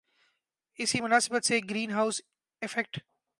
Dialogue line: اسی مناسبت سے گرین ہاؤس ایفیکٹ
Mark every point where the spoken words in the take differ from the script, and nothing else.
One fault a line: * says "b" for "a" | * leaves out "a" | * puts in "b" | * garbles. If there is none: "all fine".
all fine